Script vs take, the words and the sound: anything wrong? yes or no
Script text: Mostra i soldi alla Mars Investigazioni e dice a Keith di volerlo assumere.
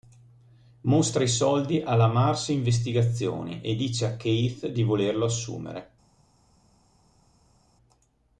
no